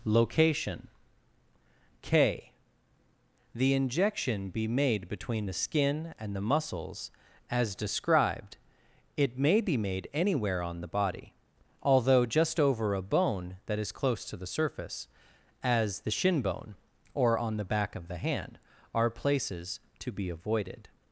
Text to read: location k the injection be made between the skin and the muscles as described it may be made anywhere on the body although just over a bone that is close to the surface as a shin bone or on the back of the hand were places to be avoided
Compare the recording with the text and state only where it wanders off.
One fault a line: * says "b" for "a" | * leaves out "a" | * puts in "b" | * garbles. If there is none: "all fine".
* says "the" for "a"
* says "are" for "were"